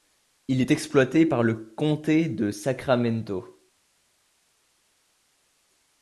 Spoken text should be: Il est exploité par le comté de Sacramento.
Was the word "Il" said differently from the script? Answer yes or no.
no